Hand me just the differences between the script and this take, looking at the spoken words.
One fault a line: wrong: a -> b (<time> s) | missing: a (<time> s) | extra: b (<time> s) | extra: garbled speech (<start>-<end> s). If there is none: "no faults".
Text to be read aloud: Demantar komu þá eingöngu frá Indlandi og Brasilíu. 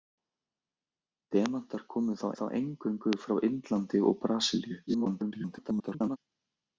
extra: þá (2.4 s)
extra: garbled speech (4.9-6.2 s)